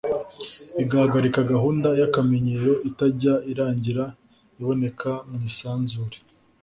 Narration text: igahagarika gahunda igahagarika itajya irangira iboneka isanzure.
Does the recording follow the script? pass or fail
fail